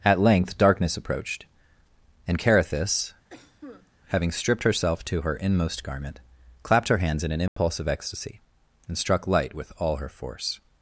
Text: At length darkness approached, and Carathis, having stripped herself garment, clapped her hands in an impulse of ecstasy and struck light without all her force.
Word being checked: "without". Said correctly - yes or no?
no